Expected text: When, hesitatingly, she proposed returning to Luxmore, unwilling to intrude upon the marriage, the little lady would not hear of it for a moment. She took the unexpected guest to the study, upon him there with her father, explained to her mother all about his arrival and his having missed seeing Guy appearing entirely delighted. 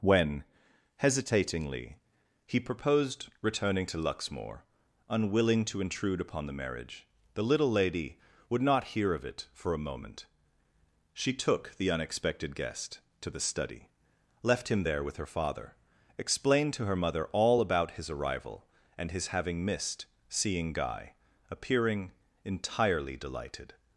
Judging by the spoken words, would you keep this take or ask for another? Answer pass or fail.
fail